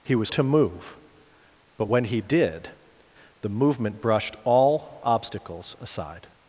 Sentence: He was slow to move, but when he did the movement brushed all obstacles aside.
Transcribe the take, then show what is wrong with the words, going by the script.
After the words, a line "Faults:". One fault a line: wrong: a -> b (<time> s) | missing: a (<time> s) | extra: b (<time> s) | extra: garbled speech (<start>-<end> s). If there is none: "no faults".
He was to move, but when he did the movement brushed all obstacles aside.
Faults:
missing: slow (0.3 s)